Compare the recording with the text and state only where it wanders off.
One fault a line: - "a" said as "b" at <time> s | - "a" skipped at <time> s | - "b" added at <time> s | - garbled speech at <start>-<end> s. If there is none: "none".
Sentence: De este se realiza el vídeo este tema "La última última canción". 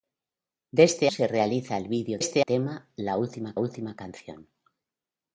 none